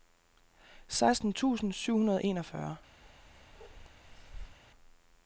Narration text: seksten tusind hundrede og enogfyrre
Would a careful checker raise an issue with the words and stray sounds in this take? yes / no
yes